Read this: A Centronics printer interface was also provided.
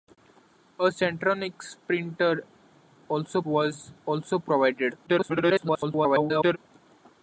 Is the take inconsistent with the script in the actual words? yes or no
yes